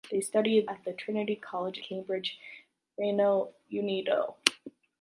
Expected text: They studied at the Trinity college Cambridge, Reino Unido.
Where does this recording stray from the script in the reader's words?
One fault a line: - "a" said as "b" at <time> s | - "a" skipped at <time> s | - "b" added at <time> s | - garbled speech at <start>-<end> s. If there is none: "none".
none